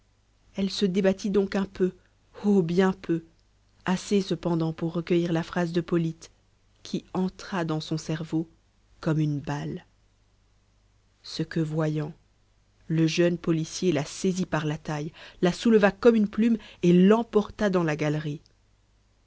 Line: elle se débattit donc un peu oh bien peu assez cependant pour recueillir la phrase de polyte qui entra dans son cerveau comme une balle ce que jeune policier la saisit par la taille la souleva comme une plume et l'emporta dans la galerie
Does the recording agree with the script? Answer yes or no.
no